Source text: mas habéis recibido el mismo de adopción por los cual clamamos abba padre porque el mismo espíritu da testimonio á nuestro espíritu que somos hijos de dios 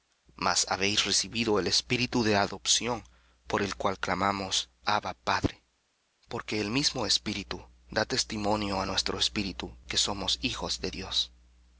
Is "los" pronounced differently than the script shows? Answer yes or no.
yes